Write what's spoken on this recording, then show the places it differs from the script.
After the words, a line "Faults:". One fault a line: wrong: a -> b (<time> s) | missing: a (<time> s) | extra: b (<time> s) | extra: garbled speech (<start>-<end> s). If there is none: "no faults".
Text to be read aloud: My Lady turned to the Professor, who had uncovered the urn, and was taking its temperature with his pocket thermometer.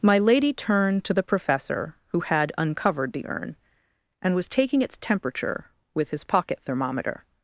My Lady turned to the Professor, who had uncovered the urn, and was taking its temperature with his pocket thermometer.
Faults:
no faults